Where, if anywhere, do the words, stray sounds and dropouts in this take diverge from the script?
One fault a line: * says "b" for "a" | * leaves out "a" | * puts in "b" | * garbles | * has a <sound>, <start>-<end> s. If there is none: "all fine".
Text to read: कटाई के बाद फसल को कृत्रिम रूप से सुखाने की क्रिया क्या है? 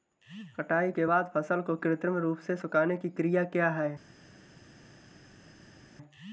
all fine